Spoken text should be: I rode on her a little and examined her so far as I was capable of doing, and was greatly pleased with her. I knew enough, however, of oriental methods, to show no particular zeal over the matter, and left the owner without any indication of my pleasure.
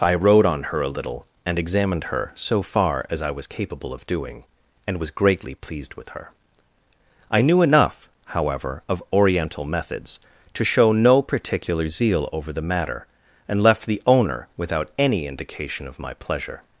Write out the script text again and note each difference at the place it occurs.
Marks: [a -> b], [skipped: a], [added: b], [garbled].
I rode on her a little and examined her so far as I was capable of doing, and was greatly pleased with her. I knew enough, however, of oriental methods, to show no particular zeal over the matter, and left the owner without any indication of my pleasure.